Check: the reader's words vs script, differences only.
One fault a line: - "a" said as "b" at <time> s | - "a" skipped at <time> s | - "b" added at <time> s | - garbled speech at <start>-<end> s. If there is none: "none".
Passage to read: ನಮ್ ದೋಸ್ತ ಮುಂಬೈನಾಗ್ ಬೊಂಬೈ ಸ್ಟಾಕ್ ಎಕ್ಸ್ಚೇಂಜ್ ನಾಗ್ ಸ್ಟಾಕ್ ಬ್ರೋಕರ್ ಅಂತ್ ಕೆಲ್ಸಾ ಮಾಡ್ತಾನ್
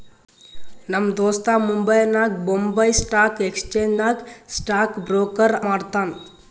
- "ಅಂತ್ ಕೆಲ್ಸಾ" skipped at 5.6 s